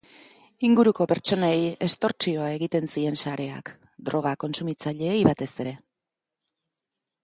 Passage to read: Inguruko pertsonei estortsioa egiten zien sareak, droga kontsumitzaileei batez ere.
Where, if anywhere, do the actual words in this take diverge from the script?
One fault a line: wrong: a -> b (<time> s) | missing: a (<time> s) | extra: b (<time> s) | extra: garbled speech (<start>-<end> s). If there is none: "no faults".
no faults